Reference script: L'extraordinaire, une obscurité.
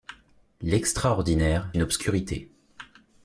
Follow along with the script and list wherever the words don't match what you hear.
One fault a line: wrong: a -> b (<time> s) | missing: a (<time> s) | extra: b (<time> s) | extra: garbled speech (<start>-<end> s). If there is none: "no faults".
no faults